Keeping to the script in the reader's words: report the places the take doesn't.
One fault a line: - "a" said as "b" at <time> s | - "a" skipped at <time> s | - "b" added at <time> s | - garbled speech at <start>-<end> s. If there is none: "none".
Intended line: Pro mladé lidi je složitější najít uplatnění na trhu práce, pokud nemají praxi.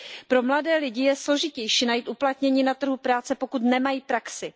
none